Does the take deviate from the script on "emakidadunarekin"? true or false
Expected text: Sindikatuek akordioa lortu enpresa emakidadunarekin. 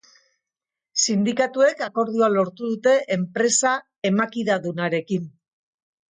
false